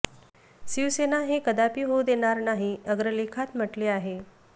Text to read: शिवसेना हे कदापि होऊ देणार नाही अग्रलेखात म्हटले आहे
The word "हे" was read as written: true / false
true